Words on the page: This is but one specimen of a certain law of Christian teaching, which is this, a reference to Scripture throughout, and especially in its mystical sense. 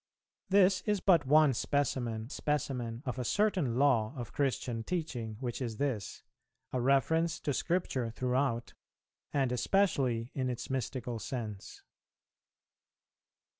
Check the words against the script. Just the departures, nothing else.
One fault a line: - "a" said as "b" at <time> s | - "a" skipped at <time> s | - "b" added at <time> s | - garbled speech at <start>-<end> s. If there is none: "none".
- "specimen" added at 2.3 s